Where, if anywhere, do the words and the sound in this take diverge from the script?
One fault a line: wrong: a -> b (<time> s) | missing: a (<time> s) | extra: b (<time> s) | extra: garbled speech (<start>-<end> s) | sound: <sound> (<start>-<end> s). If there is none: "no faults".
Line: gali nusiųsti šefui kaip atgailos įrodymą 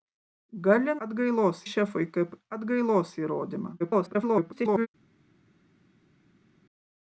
wrong: nusiųsti -> atgailos (1.1 s)
extra: garbled speech (3.8-4.9 s)